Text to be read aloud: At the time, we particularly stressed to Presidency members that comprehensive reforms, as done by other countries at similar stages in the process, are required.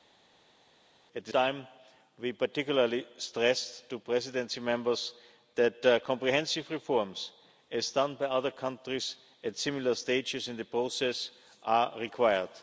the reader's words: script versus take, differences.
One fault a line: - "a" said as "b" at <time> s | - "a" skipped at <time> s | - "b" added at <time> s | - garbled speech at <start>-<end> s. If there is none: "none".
none